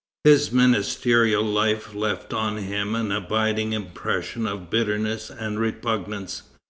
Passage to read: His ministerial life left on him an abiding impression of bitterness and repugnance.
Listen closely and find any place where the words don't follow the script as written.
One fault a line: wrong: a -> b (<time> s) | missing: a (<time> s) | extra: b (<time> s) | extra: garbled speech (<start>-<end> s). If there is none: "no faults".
no faults